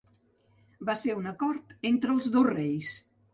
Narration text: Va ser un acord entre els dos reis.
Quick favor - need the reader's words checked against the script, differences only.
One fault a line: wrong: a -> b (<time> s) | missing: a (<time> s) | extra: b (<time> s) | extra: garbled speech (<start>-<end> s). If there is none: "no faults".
no faults